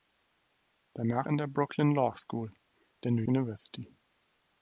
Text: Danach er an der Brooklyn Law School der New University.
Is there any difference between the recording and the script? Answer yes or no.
no